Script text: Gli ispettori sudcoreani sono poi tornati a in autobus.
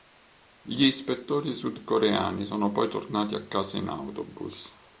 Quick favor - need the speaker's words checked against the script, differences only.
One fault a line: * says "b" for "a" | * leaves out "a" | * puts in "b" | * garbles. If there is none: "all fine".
* puts in "casa"